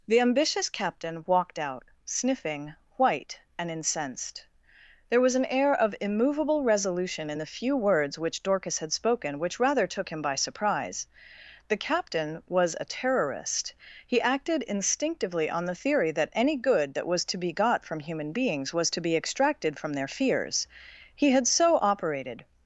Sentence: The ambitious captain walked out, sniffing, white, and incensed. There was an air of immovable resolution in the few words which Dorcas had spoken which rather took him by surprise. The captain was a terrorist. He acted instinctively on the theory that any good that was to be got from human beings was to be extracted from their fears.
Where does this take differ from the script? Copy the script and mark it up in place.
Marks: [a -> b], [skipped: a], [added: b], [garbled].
The ambitious captain walked out, sniffing, white, and incensed. There was an air of immovable resolution in the few words which Dorcas had spoken which rather took him by surprise. The captain was a terrorist. He acted instinctively on the theory that any good that was to be got from human beings was to be extracted from their fears. [added: He had so operated]